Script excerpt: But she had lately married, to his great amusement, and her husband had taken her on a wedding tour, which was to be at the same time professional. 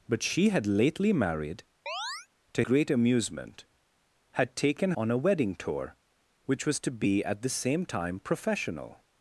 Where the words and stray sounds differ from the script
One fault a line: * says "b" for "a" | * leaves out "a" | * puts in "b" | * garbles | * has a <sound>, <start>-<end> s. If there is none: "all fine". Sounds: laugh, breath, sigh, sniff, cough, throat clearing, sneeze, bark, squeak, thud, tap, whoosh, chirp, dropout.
* has a chirp, 1.9-2.3 s
* leaves out "his"
* leaves out "and her husband"
* leaves out "her"